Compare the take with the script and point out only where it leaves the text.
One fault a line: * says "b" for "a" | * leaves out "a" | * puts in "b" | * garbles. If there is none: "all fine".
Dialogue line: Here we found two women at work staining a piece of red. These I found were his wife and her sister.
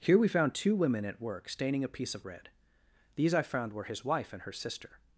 all fine